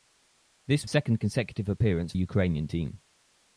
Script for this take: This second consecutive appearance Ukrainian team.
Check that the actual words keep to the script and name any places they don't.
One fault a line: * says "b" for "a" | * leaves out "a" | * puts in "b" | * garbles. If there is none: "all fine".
all fine